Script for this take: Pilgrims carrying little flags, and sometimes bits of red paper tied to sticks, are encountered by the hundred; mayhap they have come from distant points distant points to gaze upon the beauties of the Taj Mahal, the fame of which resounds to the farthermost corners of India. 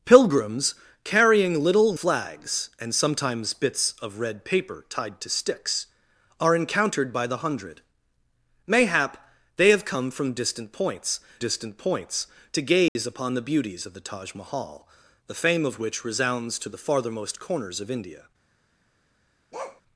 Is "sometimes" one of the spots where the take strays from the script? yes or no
no